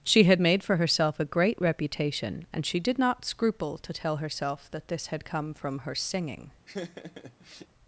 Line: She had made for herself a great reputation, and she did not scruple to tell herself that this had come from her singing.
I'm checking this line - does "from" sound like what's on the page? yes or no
yes